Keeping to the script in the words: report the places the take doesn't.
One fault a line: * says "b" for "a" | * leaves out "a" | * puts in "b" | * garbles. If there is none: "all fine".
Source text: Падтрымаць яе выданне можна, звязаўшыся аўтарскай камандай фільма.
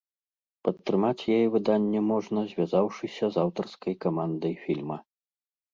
* puts in "з"